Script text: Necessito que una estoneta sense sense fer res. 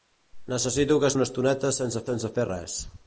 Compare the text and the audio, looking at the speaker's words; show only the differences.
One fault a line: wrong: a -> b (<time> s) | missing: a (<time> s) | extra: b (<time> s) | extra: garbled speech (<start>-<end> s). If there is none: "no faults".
no faults